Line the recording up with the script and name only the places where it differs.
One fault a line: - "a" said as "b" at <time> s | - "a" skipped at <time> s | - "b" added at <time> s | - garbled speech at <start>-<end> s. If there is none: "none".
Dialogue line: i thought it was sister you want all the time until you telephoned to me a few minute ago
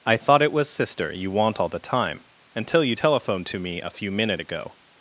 none